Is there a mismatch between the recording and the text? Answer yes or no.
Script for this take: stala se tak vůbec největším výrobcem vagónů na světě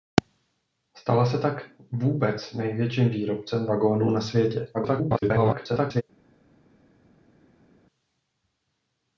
yes